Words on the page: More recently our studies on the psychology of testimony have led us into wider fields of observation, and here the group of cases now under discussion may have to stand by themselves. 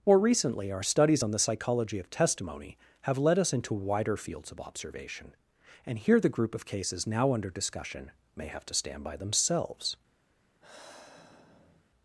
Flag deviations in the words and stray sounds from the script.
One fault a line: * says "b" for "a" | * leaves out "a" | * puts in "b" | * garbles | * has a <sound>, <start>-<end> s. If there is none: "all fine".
* has a sigh, 10.6-11.8 s